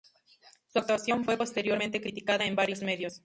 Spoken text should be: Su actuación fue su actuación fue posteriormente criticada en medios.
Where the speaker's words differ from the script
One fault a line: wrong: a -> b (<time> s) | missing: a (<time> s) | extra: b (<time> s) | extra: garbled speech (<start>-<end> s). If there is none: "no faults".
missing: su actuación fue (1.4 s)
extra: varios (2.5 s)